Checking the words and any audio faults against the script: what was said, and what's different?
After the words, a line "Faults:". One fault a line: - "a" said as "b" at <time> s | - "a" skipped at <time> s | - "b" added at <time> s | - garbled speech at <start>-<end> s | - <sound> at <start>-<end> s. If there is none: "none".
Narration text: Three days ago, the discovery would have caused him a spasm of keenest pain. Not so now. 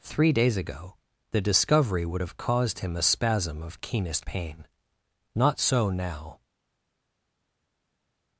Three days ago, the discovery would have caused him a spasm of keenest pain. Not so now.
Faults:
none